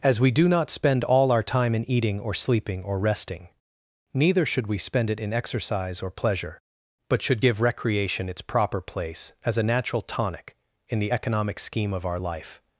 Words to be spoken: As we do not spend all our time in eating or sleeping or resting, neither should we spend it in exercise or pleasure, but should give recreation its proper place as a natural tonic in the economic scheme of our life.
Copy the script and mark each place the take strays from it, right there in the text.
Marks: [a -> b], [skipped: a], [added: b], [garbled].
As we do not spend all our time in eating or sleeping or resting, neither should we spend it in exercise or pleasure, but should give recreation its proper place as a natural tonic in the economic scheme of our life.